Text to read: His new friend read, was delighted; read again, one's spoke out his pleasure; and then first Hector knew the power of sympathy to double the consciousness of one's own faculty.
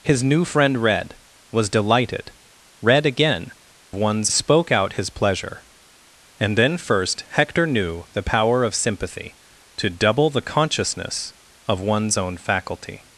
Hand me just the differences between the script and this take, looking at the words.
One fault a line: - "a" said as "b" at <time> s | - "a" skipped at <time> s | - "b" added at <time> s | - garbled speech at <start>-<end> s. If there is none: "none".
none